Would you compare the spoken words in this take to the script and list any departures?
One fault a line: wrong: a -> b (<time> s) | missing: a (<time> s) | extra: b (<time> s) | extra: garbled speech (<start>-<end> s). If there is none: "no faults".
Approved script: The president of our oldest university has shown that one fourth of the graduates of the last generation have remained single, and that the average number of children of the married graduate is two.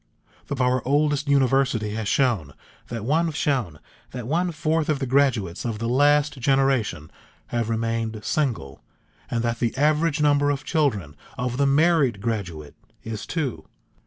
missing: president (0.6 s)
extra: shown that one (3.4 s)